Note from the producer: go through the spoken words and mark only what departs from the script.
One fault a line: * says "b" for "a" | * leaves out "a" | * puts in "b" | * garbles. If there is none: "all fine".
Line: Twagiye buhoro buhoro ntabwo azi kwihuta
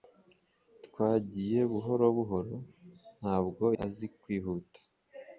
all fine